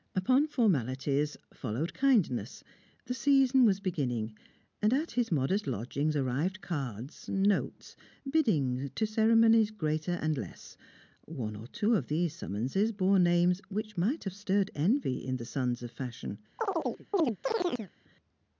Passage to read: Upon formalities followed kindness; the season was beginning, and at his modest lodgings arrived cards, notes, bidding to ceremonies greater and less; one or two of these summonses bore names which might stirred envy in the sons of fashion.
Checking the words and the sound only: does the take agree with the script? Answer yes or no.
no